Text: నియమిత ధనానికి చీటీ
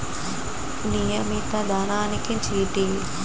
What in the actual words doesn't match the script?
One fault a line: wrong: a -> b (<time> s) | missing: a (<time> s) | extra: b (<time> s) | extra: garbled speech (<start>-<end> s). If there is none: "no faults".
no faults